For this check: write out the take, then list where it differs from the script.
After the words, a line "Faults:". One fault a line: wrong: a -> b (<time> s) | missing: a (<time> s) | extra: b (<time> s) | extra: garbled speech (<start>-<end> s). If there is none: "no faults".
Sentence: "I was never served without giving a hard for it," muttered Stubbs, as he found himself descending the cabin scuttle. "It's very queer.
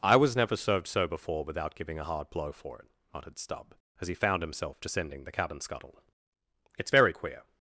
"I was never served so before without giving a hard blow for it," muttered Stubb, as he found himself descending the cabin scuttle. "It's very queer.
Faults:
extra: so before (0.9 s)
extra: blow (2.3 s)
wrong: Stubbs -> Stubb (3.4 s)